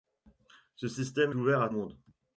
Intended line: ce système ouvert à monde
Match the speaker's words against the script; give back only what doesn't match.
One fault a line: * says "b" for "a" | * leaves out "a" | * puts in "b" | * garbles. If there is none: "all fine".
all fine